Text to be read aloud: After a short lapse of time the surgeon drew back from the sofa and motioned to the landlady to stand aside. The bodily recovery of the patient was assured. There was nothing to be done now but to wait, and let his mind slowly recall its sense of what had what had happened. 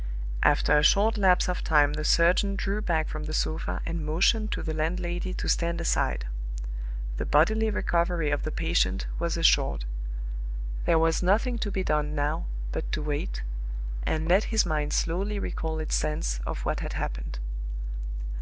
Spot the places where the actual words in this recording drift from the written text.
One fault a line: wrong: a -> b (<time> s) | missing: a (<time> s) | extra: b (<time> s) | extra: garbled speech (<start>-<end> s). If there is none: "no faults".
missing: what had (16.9 s)